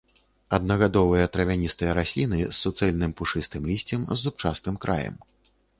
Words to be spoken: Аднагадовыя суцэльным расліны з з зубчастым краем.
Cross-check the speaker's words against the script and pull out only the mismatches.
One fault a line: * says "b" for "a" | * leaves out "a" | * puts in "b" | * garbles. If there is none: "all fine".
* says "травяністыя" for "суцэльным"
* puts in "суцэльным пушыстым лісцем"